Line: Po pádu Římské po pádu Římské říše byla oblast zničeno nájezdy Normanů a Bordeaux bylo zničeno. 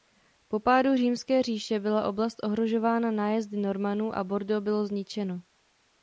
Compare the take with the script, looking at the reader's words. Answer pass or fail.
fail